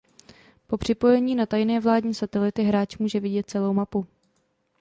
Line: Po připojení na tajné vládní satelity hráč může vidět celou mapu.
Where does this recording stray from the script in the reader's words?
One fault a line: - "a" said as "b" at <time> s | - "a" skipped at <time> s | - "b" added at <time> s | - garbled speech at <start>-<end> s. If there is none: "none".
none